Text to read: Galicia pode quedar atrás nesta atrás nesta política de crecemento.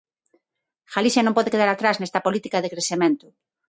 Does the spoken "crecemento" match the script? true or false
true